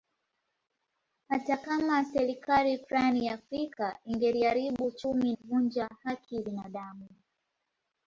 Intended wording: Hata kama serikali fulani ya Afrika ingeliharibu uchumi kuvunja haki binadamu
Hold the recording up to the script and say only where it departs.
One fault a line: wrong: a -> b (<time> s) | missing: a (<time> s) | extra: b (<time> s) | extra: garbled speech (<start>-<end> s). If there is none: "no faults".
no faults